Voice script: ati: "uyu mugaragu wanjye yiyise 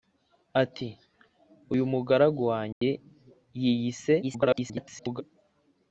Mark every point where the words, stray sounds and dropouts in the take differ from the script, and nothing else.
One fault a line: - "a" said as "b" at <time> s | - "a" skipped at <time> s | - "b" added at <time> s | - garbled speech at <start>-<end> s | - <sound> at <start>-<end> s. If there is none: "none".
- dropout at 2.7-2.8 s
- garbled speech at 4.2-5.2 s